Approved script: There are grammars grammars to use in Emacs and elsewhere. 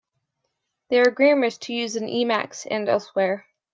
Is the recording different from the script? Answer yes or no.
yes